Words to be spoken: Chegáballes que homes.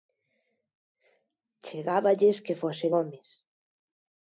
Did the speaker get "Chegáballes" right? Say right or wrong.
right